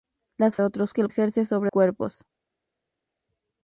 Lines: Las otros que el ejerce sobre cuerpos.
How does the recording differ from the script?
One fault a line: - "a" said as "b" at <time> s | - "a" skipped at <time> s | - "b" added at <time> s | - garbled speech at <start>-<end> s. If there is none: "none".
none